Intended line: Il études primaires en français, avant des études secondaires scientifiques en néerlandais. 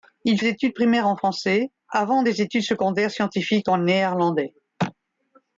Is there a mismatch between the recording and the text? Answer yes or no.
no